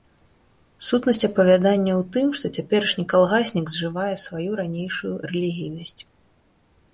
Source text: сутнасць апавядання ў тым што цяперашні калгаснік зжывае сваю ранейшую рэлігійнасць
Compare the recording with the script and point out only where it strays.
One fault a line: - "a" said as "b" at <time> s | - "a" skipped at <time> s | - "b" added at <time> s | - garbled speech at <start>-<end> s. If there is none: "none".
none